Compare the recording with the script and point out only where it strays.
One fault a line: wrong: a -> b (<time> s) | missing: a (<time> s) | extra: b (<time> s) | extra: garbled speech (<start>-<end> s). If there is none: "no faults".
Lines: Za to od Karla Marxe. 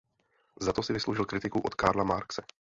extra: si vysloužil kritiku (0.8 s)